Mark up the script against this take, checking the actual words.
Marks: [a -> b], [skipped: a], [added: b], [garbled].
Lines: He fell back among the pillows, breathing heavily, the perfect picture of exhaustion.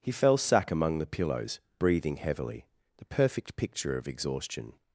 He fell [back -> sack] among the pillows, breathing heavily, the perfect picture of exhaustion.